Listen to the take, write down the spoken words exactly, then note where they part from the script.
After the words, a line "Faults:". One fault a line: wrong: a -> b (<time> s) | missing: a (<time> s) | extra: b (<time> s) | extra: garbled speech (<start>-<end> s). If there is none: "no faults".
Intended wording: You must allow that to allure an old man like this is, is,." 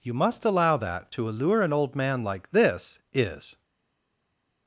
You must allow that to allure an old man like this is,."
Faults:
missing: is (3.6 s)